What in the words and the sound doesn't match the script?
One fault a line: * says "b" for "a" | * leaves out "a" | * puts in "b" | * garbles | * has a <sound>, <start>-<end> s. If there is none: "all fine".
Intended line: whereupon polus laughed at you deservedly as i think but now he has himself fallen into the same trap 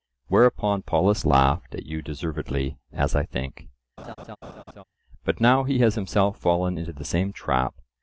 * has a laugh, 4.0-4.8 s